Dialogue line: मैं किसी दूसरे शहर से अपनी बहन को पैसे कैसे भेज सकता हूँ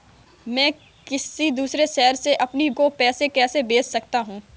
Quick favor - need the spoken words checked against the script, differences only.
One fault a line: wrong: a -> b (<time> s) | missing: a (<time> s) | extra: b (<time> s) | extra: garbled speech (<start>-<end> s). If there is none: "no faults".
missing: बहन (2.7 s)